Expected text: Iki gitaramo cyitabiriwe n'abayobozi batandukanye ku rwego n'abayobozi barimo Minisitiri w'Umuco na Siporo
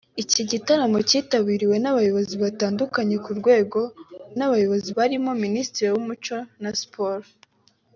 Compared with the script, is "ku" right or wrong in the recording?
right